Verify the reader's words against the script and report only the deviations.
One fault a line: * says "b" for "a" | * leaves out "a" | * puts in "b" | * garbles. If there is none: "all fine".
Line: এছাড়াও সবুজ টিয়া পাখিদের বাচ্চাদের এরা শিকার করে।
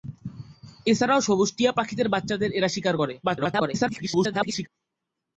* garbles